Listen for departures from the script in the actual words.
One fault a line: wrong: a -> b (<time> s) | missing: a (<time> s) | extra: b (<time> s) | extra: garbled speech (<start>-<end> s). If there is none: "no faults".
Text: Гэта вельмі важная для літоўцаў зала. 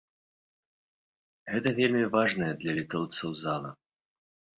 no faults